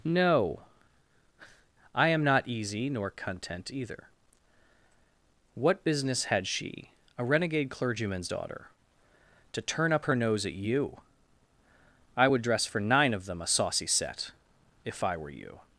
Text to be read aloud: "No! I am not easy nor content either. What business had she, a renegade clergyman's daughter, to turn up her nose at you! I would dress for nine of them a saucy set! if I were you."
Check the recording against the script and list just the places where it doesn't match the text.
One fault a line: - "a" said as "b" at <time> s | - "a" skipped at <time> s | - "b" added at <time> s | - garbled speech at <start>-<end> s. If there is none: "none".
none